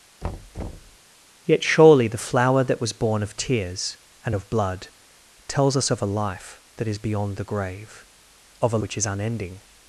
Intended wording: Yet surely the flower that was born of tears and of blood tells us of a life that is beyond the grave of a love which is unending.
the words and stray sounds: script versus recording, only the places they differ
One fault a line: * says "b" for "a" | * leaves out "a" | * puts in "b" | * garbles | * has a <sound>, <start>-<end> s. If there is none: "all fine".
* has a thud, 0.2-1.0 s
* leaves out "love"